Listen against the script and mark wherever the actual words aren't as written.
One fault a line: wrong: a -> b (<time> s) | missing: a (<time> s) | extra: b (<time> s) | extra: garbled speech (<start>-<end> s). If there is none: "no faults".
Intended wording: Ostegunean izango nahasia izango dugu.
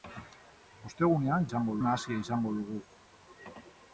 no faults